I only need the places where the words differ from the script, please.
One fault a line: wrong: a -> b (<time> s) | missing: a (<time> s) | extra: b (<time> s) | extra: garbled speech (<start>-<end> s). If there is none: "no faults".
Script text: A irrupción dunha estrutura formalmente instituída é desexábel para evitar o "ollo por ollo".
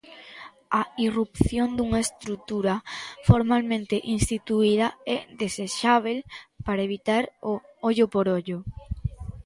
no faults